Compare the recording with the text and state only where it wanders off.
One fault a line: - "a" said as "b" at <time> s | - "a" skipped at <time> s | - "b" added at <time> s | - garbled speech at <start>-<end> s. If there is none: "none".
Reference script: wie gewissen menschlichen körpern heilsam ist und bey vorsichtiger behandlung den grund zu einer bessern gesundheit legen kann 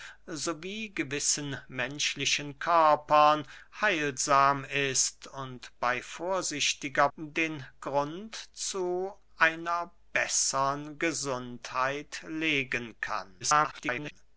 - "behandlung" skipped at 7.1 s
- garbled speech at 13.4-14.1 s